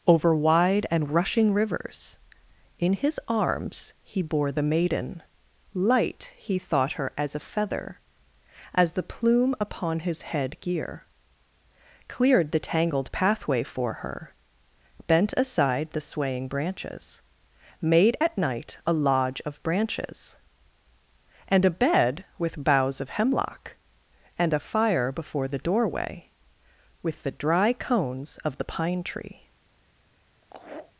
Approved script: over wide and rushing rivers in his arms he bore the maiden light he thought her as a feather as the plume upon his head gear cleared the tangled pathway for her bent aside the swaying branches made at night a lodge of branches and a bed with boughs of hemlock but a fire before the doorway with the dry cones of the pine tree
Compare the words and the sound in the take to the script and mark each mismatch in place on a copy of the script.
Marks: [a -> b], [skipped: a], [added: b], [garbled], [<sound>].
over wide and rushing rivers in his arms he bore the maiden light he thought her as a feather as the plume upon his head gear cleared the tangled pathway for her bent aside the swaying branches made at night a lodge of branches and a bed with boughs of hemlock [but -> and] a fire before the doorway with the dry cones of the pine tree [laugh]